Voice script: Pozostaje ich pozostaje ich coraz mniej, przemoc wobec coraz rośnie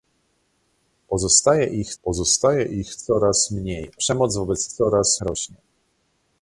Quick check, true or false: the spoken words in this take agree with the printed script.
true